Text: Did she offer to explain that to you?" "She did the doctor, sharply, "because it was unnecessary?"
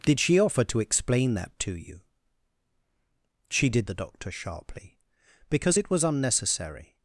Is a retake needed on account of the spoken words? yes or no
no